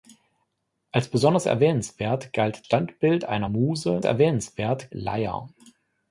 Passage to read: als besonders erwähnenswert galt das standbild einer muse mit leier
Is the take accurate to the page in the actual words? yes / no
no